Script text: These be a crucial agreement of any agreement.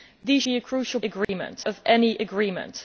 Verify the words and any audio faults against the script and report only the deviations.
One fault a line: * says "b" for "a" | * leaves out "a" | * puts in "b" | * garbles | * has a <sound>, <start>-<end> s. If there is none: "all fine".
* has a dropout, 1.2-1.3 s